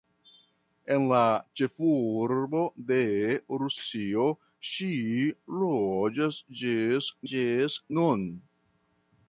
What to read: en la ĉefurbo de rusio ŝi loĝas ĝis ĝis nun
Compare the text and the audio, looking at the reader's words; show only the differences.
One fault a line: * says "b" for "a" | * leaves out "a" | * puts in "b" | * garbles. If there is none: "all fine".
all fine